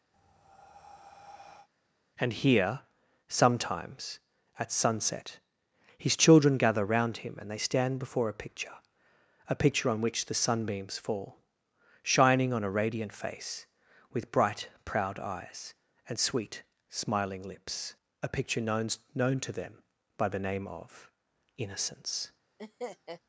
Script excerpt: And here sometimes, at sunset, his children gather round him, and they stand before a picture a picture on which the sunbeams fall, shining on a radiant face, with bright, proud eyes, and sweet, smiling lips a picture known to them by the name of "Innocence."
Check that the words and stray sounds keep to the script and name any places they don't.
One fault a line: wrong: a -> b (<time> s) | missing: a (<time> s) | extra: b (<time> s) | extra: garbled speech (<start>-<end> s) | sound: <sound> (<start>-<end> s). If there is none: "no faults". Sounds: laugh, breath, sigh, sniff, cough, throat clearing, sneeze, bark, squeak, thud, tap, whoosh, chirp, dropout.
sound: breath (0.1-1.7 s)
extra: known (19.1 s)
sound: laugh (22.6-23.2 s)